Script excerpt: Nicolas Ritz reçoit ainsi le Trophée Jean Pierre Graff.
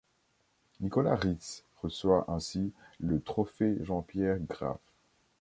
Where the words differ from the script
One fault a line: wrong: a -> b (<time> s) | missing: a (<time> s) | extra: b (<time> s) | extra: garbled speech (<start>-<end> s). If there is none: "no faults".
no faults